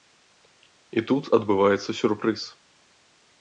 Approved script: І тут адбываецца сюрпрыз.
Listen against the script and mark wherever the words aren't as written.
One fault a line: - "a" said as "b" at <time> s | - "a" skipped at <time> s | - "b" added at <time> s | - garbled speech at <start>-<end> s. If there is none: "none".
none